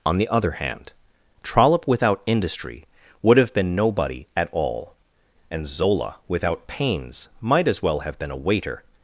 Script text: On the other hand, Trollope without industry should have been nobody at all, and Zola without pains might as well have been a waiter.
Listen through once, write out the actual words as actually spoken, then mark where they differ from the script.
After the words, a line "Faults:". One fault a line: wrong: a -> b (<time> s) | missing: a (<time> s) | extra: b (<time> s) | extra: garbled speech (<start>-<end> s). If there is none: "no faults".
On the other hand, Trollope without industry would have been nobody at all, and Zola without pains might as well have been a waiter.
Faults:
wrong: should -> would (3.2 s)